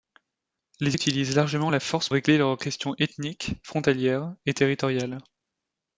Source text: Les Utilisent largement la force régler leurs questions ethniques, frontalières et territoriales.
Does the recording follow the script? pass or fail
pass